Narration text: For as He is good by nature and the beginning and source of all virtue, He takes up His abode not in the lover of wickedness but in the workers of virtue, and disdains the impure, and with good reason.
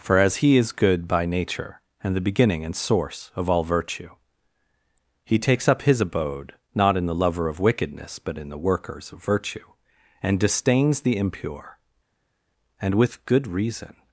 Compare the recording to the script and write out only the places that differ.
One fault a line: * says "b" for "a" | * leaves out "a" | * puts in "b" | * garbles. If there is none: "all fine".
all fine